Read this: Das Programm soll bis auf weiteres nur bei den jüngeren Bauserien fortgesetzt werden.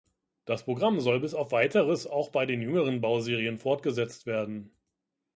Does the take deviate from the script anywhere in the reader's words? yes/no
yes